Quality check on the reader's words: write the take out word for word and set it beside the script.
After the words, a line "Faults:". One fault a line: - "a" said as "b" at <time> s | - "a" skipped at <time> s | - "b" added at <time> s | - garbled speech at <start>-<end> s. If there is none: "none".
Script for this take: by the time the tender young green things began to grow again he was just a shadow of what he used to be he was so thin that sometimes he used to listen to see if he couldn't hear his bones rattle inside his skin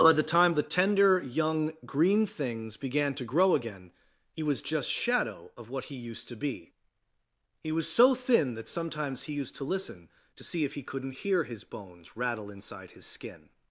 by the time the tender young green things began to grow again he was just shadow of what he used to be he was so thin that sometimes he used to listen to see if he couldn't hear his bones rattle inside his skin
Faults:
- "a" skipped at 4.9 s